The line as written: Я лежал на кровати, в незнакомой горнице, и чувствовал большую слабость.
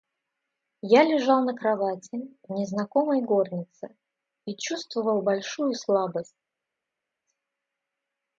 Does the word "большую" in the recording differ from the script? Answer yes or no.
no